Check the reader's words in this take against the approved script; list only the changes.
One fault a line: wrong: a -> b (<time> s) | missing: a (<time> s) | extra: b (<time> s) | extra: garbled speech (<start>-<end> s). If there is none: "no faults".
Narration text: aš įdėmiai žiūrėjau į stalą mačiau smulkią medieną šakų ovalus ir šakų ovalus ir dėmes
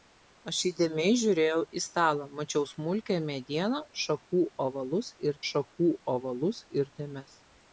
no faults